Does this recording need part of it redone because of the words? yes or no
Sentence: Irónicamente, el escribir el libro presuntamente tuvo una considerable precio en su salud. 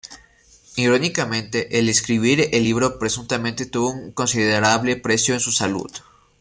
yes